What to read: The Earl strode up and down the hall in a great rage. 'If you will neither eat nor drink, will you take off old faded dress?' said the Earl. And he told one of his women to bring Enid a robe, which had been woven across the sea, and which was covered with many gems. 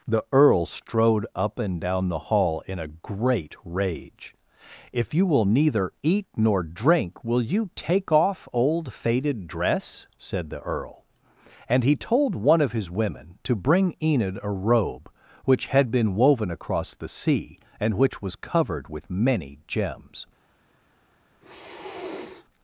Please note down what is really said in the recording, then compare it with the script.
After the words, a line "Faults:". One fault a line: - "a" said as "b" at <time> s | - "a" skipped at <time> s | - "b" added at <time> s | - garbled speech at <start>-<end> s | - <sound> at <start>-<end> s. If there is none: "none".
The Earl strode up and down the hall in a great rage. 'If you will neither eat nor drink, will you take off old faded dress?' said the Earl. And he told one of his women to bring Enid a robe, which had been woven across the sea, and which was covered with many gems.
Faults:
- sniff at 21.4-22.5 s